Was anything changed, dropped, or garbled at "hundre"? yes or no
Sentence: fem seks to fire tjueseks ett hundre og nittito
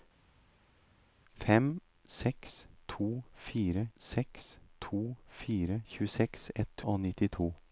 yes